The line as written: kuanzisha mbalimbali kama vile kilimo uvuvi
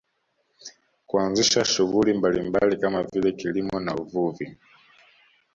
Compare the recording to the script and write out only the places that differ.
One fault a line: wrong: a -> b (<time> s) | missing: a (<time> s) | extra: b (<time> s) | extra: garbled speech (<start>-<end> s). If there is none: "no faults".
extra: shughuli (1.6 s)
extra: na (3.8 s)